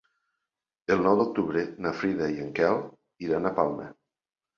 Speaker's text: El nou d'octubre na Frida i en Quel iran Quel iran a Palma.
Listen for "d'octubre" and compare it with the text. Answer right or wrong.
right